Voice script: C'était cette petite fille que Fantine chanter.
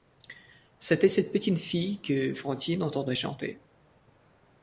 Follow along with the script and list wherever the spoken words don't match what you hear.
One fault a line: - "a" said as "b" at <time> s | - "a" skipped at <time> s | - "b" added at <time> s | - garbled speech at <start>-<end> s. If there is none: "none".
- "entendait" added at 2.8 s